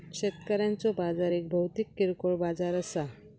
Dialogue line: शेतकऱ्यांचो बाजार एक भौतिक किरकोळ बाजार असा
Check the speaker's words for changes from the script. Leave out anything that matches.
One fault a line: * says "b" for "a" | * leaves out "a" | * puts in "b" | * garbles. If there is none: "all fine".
all fine